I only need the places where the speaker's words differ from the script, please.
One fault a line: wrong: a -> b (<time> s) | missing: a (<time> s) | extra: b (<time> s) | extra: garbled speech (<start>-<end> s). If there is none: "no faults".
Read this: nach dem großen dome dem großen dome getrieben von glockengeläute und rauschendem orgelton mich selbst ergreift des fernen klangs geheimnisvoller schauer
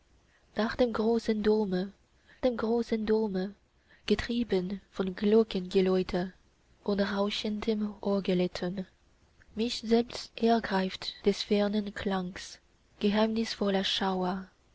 no faults